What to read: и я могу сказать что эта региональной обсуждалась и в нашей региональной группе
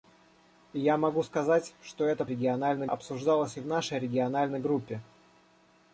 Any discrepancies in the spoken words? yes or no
no